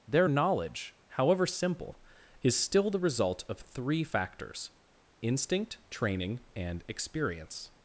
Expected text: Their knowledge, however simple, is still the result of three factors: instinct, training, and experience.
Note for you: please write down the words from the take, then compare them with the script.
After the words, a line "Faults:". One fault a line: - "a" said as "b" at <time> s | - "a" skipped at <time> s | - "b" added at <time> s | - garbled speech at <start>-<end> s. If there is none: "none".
Their knowledge, however simple, is still the result of three factors: instinct, training, and experience.
Faults:
none